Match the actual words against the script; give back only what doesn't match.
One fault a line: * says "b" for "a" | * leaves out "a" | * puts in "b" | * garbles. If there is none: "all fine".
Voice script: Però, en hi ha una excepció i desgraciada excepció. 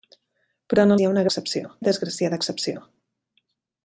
all fine